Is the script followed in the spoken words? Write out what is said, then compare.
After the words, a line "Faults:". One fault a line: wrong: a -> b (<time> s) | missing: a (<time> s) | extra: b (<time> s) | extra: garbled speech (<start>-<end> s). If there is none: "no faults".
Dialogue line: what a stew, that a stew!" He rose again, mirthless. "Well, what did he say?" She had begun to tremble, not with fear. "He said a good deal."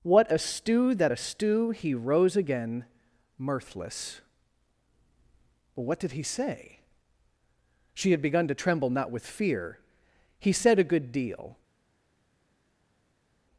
what a stew, that a stew!" He rose again, mirthless. "Well, what did he say?" She had begun to tremble, not with fear. "He said a good deal."
Faults:
no faults